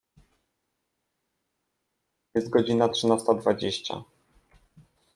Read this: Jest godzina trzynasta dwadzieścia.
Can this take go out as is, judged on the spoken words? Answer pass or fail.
pass